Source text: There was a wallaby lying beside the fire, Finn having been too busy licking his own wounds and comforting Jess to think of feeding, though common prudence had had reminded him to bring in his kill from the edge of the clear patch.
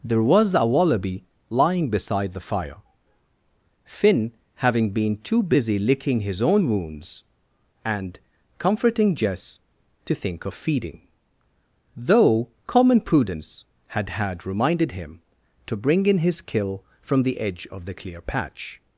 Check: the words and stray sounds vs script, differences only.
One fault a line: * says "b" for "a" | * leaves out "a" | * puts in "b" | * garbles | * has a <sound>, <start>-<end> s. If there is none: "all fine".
all fine